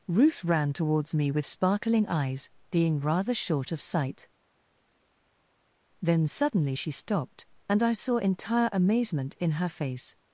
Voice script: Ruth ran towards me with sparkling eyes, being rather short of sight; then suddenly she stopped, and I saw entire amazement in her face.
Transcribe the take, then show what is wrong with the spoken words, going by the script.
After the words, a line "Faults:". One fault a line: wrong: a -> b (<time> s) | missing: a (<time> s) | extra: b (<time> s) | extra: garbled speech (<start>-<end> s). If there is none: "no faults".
Ruth ran towards me with sparkling eyes, being rather short of sight; then suddenly she stopped, and I saw entire amazement in her face.
Faults:
no faults